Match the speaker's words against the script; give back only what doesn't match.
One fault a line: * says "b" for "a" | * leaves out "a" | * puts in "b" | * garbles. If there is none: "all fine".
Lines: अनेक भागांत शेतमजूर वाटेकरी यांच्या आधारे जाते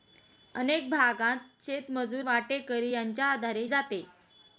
all fine